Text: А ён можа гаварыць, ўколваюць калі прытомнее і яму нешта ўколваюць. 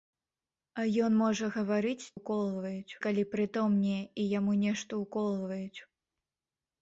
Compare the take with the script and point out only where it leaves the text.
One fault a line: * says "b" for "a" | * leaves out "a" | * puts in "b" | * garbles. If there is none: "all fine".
all fine